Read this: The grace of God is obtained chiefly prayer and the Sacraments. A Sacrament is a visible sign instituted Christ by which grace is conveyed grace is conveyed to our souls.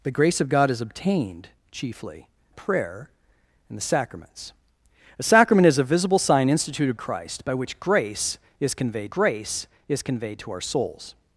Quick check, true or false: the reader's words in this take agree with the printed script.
true